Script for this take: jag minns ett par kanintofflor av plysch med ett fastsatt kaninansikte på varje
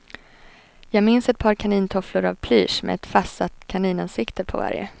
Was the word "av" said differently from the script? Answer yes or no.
no